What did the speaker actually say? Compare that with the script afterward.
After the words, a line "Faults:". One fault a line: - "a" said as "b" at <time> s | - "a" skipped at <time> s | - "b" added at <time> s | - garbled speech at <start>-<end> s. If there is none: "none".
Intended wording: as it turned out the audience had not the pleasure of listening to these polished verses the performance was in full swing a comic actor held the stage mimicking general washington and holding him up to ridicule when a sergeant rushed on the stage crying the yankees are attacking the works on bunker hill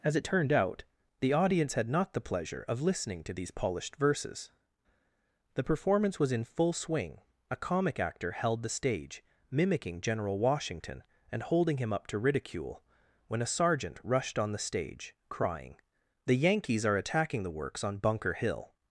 as it turned out the audience had not the pleasure of listening to these polished verses the performance was in full swing a comic actor held the stage mimicking general washington and holding him up to ridicule when a sergeant rushed on the stage crying the yankees are attacking the works on bunker hill
Faults:
none